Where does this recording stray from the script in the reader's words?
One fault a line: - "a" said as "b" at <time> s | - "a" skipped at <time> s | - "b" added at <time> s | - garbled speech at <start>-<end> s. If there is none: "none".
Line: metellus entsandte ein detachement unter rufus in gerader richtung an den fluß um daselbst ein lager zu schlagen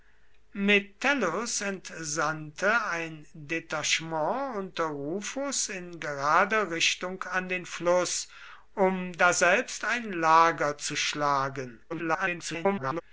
- garbled speech at 11.9-13.0 s